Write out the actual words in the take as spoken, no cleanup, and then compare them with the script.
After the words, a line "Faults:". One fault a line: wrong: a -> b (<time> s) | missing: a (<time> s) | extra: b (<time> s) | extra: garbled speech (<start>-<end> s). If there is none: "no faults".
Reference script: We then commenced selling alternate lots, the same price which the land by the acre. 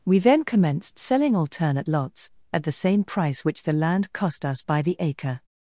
We then commenced selling alternate lots, at the same price which the land cost us by the acre.
Faults:
extra: at (2.5 s)
extra: cost us (4.1 s)